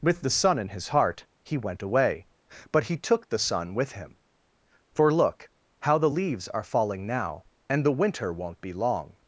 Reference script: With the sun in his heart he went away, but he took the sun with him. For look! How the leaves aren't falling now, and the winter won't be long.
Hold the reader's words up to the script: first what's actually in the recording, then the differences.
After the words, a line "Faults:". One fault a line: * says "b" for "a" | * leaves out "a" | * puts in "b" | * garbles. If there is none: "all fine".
With the sun in his heart he went away, but he took the sun with him. For look! How the leaves are falling now, and the winter won't be long.
Faults:
* says "are" for "aren't"